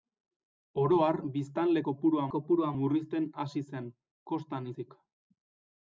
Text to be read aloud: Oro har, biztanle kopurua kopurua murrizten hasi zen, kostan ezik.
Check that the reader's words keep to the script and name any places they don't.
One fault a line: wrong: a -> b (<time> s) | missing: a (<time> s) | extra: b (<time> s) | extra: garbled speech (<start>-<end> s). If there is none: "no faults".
no faults